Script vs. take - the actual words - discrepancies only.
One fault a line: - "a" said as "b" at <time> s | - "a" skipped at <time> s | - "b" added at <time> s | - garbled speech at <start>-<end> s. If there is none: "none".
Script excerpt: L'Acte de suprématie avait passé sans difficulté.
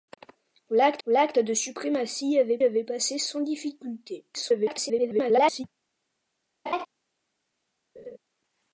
- "l'acte" added at 1.1 s
- "avait" added at 2.6 s
- garbled speech at 4.3-5.6 s